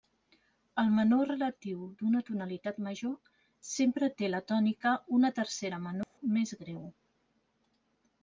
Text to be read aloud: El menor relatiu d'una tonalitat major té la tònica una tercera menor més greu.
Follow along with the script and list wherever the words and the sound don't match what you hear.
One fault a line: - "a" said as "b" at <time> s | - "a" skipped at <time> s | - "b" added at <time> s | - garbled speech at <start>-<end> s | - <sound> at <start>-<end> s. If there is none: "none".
- "sempre" added at 3.7 s
- dropout at 6.0-6.2 s